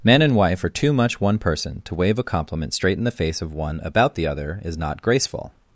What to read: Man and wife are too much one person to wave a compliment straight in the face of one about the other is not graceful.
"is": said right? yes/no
yes